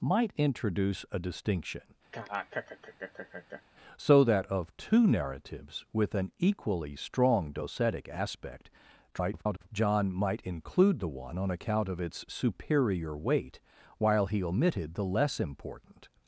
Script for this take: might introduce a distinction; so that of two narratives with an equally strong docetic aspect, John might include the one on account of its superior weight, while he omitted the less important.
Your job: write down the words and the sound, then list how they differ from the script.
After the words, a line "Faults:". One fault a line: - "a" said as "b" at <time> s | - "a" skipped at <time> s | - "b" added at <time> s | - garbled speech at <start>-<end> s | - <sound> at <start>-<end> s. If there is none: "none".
might introduce a distinction; so that of two narratives with an equally strong docetic aspect, [garbled] John might include the one on account of its superior weight, while he omitted the less important.
Faults:
- laugh at 2.1-3.6 s
- garbled speech at 9.1-9.7 s